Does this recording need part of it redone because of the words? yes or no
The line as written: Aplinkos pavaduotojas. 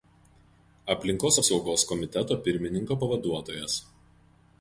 yes